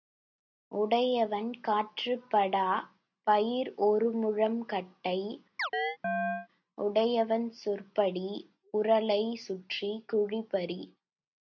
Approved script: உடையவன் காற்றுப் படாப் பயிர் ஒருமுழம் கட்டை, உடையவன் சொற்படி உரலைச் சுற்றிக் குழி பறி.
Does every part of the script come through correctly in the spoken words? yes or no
yes